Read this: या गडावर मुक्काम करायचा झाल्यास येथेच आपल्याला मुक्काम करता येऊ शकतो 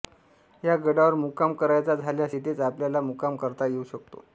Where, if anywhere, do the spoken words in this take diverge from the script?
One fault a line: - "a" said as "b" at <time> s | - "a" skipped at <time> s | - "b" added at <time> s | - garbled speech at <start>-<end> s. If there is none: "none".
none